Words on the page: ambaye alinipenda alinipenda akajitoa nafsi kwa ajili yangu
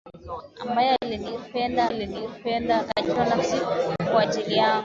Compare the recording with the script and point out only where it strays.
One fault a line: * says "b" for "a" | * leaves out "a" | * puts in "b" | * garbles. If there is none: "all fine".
all fine